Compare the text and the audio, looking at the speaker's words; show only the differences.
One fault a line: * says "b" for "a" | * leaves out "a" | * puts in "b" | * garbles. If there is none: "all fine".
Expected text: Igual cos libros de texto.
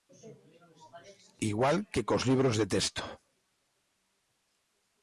* puts in "que"